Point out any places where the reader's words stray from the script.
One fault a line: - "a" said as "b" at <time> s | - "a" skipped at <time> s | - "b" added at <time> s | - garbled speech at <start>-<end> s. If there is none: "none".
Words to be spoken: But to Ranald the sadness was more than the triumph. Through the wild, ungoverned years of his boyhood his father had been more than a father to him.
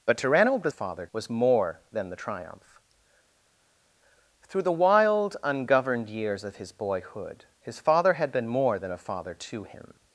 - "sadness" said as "father" at 0.7 s